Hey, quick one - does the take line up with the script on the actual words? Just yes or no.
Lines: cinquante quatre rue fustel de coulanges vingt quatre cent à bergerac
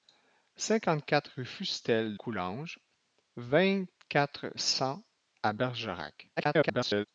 no